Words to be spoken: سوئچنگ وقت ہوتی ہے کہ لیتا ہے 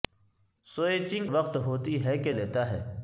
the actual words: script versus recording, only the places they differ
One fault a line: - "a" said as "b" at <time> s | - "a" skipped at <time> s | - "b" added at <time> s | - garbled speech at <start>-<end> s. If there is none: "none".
none